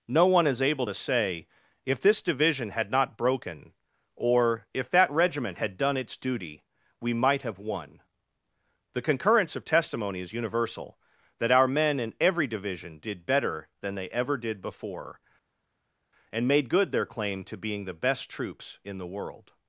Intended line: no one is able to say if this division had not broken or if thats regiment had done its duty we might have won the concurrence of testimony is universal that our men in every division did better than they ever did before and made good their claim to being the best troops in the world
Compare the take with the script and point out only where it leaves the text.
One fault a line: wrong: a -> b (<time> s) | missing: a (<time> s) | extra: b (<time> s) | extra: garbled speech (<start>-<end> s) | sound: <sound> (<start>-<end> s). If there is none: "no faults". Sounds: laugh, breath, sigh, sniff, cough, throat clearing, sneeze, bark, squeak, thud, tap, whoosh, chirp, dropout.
wrong: thats -> that (4.9 s)